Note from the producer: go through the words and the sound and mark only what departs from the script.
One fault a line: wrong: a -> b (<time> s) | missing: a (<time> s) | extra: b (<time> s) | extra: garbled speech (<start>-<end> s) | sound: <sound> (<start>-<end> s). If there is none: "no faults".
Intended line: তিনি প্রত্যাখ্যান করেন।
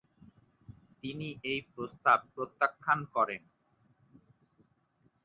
extra: এই প্রস্তাব (1.4 s)